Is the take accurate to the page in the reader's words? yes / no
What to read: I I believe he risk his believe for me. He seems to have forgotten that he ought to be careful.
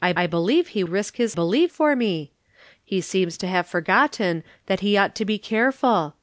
yes